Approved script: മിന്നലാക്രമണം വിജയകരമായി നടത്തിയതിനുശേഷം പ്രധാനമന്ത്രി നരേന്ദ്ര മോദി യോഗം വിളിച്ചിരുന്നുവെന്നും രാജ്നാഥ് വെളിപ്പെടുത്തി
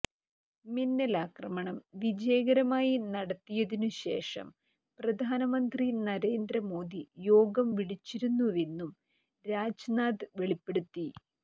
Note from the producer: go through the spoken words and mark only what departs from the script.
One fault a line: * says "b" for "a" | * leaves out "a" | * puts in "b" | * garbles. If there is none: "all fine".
all fine